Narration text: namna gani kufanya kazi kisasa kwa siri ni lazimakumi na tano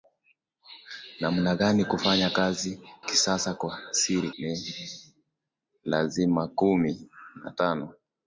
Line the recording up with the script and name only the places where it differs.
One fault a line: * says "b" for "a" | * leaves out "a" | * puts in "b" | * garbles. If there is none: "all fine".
all fine